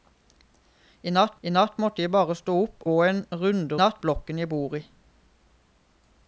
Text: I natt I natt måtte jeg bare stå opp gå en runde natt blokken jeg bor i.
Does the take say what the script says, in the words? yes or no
yes